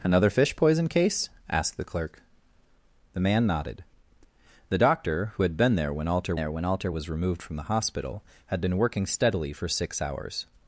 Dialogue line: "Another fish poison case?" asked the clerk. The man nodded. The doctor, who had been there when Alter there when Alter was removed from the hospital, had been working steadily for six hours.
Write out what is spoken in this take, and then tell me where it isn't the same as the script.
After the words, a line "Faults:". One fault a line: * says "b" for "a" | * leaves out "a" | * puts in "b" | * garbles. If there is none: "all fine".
"Another fish poison case?" asked the clerk. The man nodded. The doctor, who had been there when Alter there when Alter was removed from the hospital, had been working steadily for six hours.
Faults:
all fine